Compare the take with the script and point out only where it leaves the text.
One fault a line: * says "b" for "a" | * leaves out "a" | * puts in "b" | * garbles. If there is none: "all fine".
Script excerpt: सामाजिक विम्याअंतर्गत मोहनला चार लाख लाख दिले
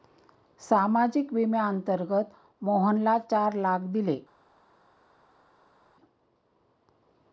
* leaves out "लाख"